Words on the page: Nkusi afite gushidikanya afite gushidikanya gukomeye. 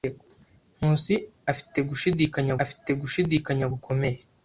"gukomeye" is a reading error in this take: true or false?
false